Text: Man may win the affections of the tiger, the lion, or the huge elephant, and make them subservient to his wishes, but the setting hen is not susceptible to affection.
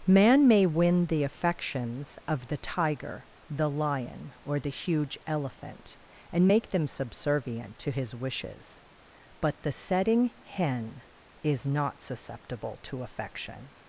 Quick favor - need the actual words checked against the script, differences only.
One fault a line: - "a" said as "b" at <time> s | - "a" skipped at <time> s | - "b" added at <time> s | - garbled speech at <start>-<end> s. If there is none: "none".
none